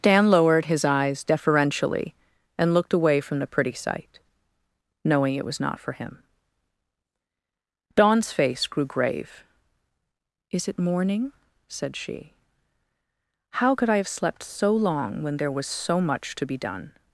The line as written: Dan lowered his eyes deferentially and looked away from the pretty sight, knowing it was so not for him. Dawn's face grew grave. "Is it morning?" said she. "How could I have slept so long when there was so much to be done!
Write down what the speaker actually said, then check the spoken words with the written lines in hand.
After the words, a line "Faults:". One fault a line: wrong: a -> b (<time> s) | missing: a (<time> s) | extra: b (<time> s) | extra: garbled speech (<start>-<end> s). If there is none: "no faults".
Dan lowered his eyes deferentially and looked away from the pretty sight, knowing it was not for him. Dawn's face grew grave. "Is it morning?" said she. "How could I have slept so long when there was so much to be done!
Faults:
missing: so (5.6 s)